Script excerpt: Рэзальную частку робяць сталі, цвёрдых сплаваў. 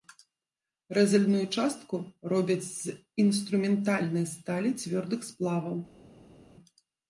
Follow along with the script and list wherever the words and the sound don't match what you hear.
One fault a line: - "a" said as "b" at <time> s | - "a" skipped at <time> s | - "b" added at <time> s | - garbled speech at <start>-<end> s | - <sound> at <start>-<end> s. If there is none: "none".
- "з інструментальнай" added at 2.7 s